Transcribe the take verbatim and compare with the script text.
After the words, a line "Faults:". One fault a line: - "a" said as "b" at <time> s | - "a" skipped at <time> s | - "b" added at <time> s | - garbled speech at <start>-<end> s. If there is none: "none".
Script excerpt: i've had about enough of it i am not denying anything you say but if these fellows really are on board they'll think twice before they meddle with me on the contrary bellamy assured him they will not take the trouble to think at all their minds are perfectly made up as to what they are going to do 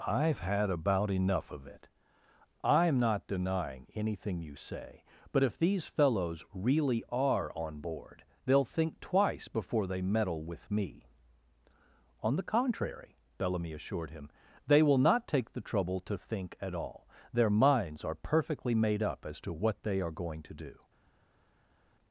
i've had about enough of it i am not denying anything you say but if these fellows really are on board they'll think twice before they meddle with me on the contrary bellamy assured him they will not take the trouble to think at all their minds are perfectly made up as to what they are going to do
Faults:
none